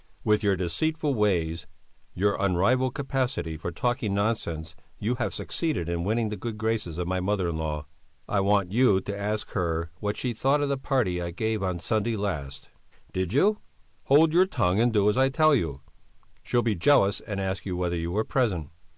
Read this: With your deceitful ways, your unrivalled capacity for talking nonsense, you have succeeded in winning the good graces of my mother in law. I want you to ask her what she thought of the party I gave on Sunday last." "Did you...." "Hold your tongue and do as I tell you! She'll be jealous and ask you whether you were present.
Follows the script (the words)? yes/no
yes